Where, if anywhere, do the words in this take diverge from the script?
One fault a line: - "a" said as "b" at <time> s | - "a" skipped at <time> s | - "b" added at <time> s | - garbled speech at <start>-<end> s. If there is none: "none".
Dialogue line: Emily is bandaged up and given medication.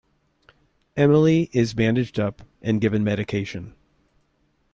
none